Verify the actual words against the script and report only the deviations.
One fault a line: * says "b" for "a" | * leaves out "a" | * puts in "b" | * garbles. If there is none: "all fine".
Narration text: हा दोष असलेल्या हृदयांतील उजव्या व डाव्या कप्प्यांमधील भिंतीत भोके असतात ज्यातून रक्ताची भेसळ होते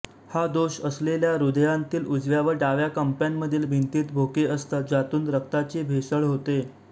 all fine